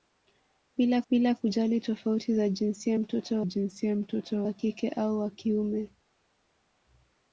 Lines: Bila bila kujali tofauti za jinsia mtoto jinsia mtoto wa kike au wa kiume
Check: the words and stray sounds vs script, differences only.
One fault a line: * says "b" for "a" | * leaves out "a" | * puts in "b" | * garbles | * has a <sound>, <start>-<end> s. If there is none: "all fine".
all fine